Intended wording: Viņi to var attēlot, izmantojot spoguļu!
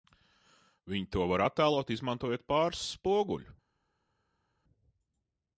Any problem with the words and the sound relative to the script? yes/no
yes